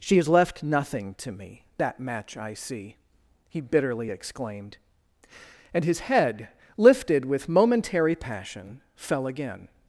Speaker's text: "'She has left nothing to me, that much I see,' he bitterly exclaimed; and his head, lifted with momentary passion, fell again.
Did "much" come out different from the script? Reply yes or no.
yes